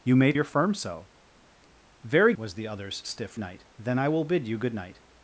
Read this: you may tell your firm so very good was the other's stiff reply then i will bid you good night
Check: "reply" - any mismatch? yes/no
yes